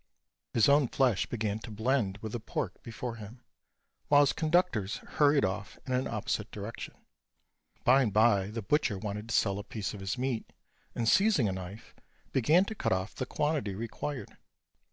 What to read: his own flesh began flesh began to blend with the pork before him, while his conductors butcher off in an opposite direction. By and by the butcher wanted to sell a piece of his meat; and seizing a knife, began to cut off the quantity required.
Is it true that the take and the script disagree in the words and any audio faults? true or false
true